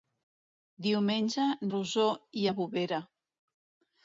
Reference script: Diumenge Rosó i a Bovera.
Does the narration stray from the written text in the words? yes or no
no